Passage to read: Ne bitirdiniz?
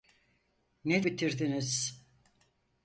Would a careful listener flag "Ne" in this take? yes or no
no